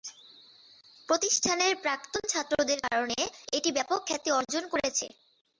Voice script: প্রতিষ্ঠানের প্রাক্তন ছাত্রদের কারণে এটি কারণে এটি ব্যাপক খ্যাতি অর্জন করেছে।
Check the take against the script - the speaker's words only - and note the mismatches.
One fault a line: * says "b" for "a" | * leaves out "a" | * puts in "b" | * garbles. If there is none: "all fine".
* leaves out "কারণে এটি"